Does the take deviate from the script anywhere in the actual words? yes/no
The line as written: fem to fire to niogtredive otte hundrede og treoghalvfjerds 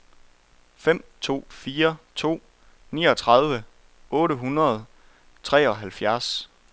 no